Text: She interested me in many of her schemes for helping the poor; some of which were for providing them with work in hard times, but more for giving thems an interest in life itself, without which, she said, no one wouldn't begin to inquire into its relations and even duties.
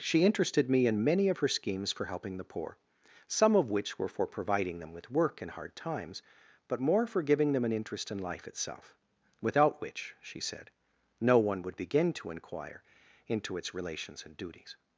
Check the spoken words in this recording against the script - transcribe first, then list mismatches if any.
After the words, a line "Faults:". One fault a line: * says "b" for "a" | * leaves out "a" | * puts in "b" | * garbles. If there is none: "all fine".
She interested me in many of her schemes for helping the poor; some of which were for providing them with work in hard times, but more for giving them an interest in life itself, without which, she said, no one would begin to inquire into its relations and duties.
Faults:
* says "them" for "thems"
* says "would" for "wouldn't"
* leaves out "even"